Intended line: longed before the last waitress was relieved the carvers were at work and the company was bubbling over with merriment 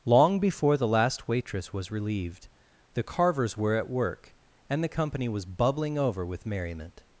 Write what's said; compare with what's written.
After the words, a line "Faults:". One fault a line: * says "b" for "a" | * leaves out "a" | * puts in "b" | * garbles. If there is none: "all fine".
long before the last waitress was relieved the carvers were at work and the company was bubbling over with merriment
Faults:
* says "long" for "longed"